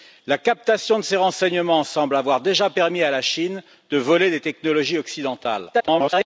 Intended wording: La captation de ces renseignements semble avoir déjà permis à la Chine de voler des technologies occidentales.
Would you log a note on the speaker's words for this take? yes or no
yes